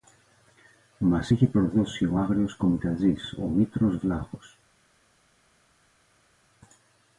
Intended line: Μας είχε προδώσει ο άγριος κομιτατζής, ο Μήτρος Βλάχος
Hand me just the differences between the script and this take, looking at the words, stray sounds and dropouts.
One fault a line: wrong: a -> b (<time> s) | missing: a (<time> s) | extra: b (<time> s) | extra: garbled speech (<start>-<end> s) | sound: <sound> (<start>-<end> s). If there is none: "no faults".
no faults